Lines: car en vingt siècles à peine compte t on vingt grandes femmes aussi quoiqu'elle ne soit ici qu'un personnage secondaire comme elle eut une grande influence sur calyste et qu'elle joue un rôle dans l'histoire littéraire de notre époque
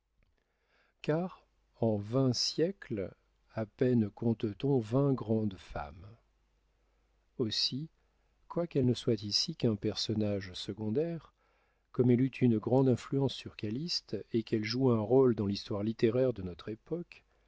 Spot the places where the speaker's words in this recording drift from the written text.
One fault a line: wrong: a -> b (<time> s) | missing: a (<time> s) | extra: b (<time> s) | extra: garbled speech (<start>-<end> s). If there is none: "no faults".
no faults